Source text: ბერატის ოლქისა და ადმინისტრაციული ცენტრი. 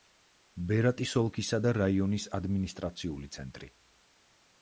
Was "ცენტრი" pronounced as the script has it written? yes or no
yes